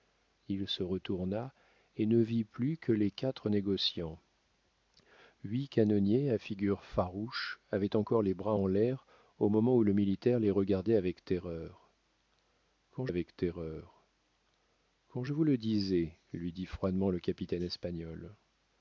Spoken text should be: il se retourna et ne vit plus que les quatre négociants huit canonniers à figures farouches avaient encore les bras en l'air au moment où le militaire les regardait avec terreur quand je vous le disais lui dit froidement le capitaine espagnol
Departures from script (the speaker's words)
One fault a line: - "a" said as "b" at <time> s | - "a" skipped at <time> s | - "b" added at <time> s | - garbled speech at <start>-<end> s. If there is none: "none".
- "avec terreur quand" added at 13.1 s